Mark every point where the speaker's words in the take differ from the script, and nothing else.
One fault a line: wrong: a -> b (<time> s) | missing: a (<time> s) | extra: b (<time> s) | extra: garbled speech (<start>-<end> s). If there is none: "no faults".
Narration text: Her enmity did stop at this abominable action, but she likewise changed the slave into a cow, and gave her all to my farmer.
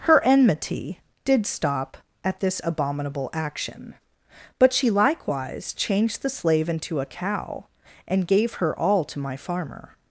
no faults